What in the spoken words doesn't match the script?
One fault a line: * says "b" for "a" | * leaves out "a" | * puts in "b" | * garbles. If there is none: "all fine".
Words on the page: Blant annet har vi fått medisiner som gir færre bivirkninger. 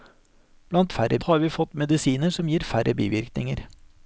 * says "færre" for "annet"